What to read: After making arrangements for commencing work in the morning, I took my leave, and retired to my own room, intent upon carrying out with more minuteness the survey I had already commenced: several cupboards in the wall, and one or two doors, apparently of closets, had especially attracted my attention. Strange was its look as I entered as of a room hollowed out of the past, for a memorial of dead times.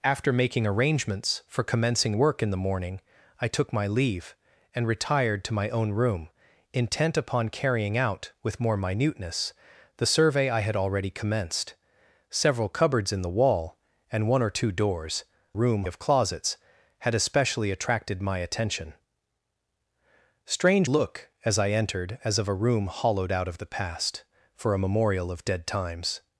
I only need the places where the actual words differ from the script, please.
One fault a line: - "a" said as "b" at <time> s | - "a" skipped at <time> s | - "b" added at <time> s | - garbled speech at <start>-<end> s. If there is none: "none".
- "apparently" said as "room" at 15.5 s
- "was its" skipped at 20.9 s